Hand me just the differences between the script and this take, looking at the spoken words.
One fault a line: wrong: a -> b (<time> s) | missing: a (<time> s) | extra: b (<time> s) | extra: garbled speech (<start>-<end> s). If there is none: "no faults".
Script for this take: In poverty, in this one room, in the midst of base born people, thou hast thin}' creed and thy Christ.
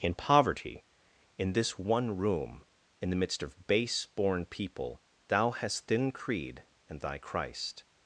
no faults